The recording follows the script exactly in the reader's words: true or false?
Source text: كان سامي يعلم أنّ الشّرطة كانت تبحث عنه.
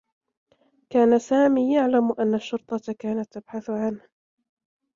true